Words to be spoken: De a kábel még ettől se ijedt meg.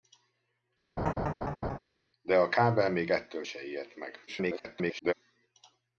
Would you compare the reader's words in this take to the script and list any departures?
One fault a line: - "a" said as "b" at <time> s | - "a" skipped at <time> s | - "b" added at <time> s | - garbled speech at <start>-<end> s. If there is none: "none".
- garbled speech at 4.3-5.1 s